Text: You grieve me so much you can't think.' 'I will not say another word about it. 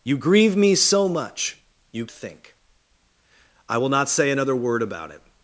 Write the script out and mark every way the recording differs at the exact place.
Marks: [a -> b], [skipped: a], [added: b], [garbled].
You grieve me so much you [skipped: can't] think.' 'I will not say another word about it.